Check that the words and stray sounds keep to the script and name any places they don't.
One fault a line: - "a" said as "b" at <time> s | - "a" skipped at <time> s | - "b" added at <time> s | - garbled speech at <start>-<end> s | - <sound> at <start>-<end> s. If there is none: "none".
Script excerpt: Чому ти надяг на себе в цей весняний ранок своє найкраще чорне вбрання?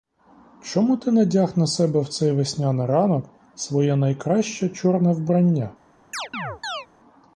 - chirp at 6.1-6.9 s